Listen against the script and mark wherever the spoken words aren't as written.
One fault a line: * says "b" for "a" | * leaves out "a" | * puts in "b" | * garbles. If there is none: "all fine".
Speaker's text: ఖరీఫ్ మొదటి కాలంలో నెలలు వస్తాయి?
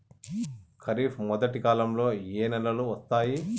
* puts in "ఏ"